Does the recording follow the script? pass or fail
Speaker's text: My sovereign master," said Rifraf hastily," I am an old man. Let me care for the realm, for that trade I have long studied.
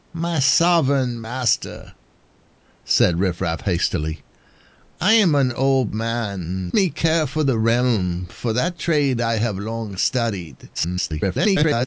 fail